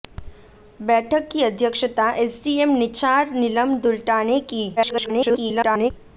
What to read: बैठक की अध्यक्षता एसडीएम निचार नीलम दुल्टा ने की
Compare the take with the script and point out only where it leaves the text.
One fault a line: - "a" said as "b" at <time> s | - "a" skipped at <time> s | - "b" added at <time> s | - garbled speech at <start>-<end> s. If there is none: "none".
- garbled speech at 4.8-5.9 s